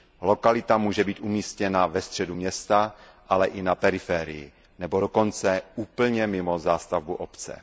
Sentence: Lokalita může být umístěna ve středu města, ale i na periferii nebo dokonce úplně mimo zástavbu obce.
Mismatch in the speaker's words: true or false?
false